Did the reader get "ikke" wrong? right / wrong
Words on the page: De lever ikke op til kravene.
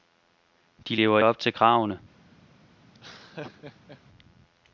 wrong